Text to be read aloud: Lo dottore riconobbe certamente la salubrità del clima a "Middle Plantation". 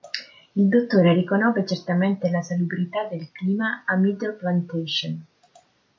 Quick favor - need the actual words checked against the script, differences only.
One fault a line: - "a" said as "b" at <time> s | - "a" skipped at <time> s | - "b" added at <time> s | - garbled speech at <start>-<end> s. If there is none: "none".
- "Lo" said as "Il" at 0.6 s